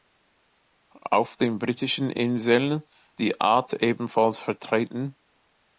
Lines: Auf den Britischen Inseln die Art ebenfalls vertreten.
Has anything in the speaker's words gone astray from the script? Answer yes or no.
no